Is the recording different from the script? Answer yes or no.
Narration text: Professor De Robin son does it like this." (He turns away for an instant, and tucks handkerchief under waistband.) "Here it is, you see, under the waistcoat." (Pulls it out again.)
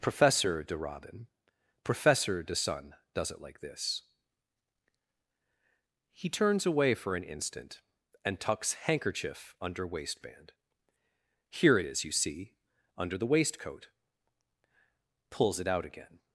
yes